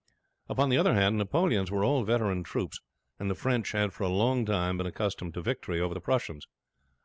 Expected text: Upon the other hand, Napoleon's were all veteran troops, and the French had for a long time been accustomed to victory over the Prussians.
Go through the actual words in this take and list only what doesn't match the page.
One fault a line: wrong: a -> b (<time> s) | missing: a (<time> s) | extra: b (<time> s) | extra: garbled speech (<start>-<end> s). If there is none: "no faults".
no faults